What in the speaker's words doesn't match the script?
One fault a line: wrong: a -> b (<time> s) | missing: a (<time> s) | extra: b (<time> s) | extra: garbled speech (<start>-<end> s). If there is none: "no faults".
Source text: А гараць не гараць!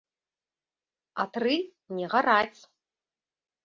wrong: гараць -> тры (1.4 s)